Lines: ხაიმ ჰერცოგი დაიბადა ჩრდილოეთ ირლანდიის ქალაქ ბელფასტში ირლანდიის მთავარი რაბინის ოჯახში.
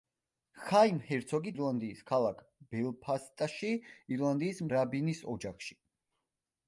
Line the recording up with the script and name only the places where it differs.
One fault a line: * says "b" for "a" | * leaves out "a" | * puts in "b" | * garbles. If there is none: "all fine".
* leaves out "დაიბადა ჩრდილოეთ"
* leaves out "მთავარი"